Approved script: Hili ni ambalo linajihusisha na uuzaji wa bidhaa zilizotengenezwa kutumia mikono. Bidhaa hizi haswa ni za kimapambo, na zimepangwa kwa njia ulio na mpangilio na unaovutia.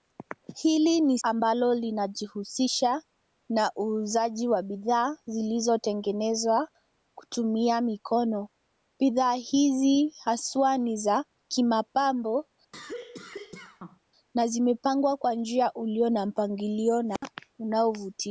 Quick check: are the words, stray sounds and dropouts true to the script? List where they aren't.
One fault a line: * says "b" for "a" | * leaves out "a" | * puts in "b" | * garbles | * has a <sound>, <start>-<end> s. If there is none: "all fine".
* has a cough, 12.7-14.0 s
* has a dropout, 17.2-17.2 s